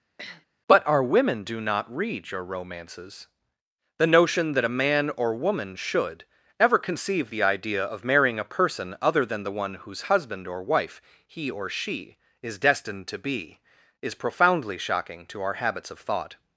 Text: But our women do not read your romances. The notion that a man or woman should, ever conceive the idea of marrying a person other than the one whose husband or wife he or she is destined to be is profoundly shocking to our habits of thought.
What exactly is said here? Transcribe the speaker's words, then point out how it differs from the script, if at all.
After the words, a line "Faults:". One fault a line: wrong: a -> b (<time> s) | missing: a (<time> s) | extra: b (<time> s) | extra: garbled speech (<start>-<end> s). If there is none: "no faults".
But our women do not read your romances. The notion that a man or woman should, ever conceive the idea of marrying a person other than the one whose husband or wife he or she is destined to be is profoundly shocking to our habits of thought.
Faults:
no faults